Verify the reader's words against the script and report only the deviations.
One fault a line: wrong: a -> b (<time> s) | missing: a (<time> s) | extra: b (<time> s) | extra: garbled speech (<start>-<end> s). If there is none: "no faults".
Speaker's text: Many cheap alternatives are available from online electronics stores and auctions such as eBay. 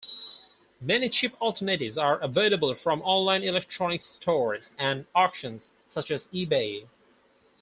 no faults